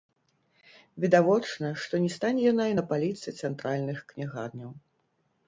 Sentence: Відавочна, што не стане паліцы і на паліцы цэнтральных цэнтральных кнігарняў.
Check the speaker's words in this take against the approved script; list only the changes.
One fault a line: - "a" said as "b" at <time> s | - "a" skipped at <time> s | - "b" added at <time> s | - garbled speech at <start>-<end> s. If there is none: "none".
- "паліцы" said as "яна" at 2.5 s
- "цэнтральных" skipped at 4.0 s